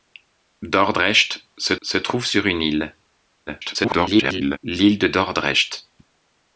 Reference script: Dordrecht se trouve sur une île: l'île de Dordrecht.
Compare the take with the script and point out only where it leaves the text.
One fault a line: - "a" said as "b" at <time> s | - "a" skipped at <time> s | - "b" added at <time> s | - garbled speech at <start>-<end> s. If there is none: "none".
- "se" added at 1.8 s
- garbled speech at 3.5-4.6 s